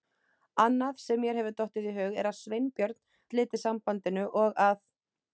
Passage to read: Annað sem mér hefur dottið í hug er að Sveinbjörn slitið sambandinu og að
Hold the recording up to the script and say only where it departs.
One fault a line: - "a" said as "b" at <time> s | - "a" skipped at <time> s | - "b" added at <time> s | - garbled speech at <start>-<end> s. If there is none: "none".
none